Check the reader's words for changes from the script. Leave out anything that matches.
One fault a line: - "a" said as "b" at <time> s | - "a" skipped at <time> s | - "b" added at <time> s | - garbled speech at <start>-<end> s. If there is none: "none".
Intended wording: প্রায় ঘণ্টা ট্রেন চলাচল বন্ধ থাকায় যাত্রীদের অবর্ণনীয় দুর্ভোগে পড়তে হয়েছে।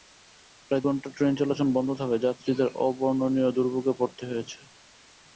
none